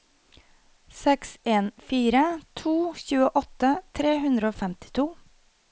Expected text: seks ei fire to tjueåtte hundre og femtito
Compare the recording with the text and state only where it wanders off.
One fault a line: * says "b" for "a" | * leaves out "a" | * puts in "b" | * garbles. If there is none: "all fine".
* says "en" for "ei"
* puts in "tre"